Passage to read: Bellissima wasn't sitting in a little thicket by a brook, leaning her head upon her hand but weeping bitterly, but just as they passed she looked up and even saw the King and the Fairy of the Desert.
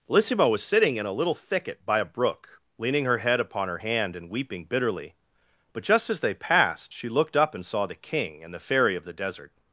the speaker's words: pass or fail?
fail